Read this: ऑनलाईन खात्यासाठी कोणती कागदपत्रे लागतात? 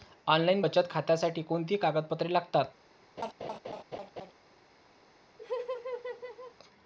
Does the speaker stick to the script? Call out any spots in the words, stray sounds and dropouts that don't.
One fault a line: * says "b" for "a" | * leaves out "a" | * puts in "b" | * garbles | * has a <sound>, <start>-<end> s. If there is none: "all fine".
* puts in "बचत"
* has a laugh, 3.2-4.3 s
* has a laugh, 5.4-6.6 s